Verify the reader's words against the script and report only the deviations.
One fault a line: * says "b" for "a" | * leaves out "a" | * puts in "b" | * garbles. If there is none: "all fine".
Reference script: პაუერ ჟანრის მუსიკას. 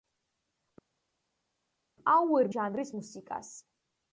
all fine